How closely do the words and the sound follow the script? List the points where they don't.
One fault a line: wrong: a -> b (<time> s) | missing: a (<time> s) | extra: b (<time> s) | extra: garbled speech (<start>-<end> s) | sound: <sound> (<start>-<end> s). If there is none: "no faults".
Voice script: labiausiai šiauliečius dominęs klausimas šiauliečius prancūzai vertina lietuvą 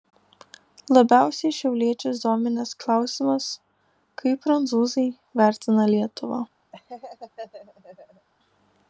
wrong: šiauliečius -> kaip (4.2 s)
sound: laugh (6.7-8.3 s)